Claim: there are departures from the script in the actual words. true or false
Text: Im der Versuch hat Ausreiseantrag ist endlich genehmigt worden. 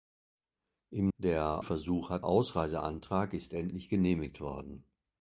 false